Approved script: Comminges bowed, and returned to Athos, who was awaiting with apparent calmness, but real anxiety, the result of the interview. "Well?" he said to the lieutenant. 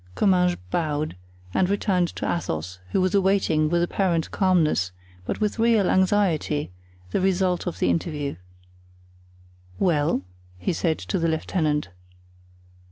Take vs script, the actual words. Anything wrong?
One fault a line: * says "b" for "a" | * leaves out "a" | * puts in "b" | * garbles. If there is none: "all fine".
* puts in "with"